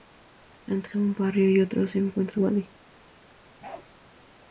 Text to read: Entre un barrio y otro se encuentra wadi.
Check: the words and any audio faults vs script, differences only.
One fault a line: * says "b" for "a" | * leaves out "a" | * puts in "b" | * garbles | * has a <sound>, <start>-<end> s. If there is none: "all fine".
* has a bark, 3.6-3.9 s